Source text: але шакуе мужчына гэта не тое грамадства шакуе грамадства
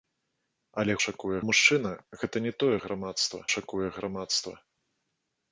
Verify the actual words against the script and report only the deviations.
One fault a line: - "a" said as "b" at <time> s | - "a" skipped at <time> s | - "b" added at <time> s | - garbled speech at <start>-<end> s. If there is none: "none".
none